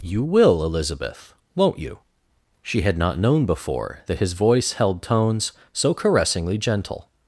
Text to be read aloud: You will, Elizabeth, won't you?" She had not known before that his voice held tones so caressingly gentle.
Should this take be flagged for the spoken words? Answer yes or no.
no